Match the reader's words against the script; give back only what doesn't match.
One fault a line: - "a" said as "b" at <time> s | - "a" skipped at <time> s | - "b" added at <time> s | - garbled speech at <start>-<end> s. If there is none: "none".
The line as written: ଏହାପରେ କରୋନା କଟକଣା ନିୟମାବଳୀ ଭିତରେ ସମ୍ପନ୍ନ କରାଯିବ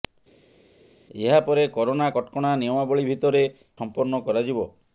none